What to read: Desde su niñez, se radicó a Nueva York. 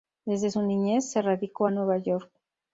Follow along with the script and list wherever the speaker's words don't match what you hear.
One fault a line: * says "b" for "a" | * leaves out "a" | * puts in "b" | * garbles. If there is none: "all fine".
all fine